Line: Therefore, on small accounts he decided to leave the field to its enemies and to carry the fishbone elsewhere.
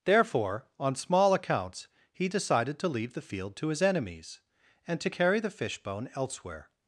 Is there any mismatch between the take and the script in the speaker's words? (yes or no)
yes